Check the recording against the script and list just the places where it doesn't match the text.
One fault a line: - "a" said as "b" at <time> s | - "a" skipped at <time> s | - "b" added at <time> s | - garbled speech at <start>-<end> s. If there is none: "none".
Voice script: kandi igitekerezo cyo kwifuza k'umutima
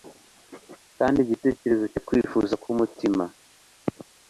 none